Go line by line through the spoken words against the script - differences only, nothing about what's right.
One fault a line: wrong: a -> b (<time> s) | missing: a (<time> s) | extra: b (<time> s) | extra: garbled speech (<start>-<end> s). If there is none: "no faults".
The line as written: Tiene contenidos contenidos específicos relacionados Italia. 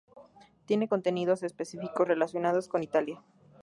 missing: contenidos (1.4 s)
extra: con (2.7 s)